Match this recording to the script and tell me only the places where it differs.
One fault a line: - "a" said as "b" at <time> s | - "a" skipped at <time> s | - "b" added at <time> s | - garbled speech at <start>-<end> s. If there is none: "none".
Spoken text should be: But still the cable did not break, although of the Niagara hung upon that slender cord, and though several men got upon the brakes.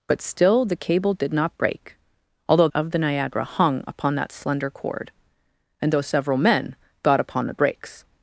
none